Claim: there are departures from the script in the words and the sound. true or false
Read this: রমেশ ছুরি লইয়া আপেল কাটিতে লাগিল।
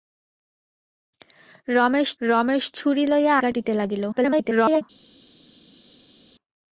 true